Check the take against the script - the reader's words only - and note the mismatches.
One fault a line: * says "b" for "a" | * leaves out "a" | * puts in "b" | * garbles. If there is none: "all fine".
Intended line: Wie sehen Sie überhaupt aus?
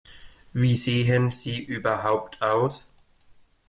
all fine